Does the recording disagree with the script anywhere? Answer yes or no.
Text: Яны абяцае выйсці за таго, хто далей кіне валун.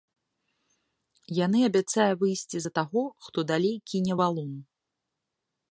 no